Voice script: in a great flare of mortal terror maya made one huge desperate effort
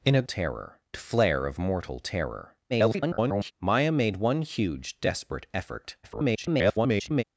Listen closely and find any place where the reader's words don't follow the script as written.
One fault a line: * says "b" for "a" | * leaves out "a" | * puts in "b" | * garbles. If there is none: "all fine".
* says "terror" for "great"
* garbles
* garbles